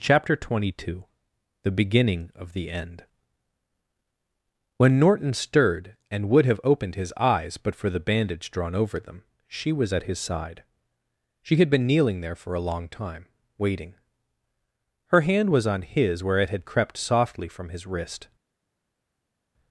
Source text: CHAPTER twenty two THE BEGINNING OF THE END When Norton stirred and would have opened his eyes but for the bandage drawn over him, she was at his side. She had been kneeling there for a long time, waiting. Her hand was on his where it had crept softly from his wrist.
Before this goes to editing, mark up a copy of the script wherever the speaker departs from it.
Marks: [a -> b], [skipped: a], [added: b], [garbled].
CHAPTER twenty two THE BEGINNING OF THE END When Norton stirred and would have opened his eyes but for the bandage drawn over [him, -> them] she was at his side. She had been kneeling there for a long time, waiting. Her hand was on his where it had crept softly from his wrist.